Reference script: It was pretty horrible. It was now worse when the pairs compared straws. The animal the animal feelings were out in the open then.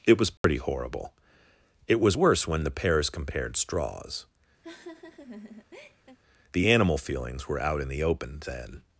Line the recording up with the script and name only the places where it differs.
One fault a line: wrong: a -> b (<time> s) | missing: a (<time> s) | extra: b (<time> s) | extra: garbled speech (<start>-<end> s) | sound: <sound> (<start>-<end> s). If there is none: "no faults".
sound: dropout (0.4-0.4 s)
missing: now (2.2 s)
sound: laugh (4.6-6.2 s)
missing: the animal (7.0 s)